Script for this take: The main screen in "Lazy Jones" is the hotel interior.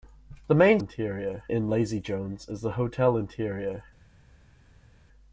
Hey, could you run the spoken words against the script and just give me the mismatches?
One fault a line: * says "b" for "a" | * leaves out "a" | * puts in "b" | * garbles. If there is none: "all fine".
* says "interior" for "screen"